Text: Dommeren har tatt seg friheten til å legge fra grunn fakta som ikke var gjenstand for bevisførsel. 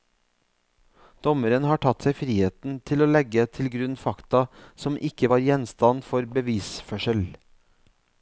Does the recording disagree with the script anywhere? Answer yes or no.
yes